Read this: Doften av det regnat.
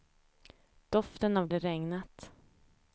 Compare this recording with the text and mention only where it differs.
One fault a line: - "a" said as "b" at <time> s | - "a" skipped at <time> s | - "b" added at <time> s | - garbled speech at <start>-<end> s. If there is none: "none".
none